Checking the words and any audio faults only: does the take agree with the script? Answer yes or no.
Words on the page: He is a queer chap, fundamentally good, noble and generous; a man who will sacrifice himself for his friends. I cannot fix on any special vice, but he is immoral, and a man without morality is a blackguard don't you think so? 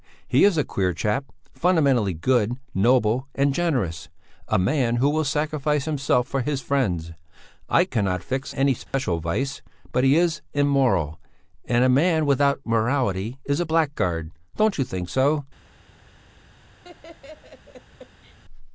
no